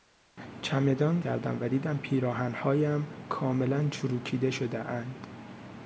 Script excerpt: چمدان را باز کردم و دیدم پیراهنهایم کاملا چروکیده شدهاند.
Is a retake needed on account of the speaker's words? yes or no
yes